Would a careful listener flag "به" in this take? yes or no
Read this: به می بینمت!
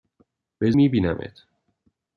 no